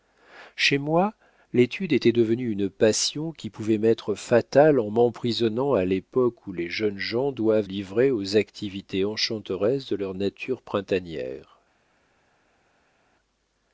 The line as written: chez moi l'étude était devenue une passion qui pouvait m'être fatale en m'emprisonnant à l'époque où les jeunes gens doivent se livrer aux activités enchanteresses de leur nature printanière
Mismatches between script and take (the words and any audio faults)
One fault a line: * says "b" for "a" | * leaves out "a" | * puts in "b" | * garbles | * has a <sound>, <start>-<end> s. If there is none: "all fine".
* leaves out "se"